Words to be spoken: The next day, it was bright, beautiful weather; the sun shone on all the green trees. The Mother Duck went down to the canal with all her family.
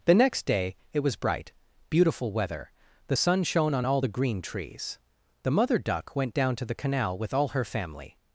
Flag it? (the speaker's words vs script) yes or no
no